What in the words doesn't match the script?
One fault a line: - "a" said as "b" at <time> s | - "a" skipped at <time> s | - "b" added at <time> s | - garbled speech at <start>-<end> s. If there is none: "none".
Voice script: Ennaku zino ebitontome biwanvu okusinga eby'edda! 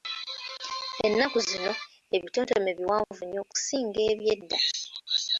- "nnyo" added at 3.2 s